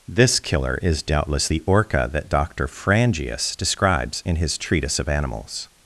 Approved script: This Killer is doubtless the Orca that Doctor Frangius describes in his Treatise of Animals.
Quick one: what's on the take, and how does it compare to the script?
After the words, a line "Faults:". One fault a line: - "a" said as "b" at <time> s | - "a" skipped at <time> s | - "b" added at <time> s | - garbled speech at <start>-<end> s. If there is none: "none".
This Killer is doubtless the Orca that Doctor Frangius describes in his Treatise of Animals.
Faults:
none